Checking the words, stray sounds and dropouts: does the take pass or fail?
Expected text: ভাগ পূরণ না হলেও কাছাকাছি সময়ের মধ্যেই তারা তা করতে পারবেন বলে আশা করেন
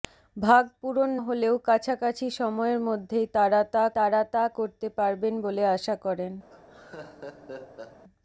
fail